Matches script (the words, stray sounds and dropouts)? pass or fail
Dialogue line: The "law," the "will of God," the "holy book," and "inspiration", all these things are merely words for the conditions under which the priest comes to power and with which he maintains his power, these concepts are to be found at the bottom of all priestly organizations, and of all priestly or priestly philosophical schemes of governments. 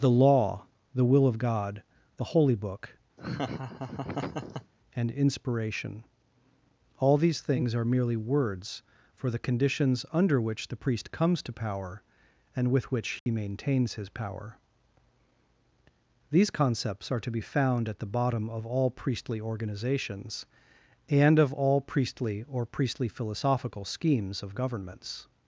fail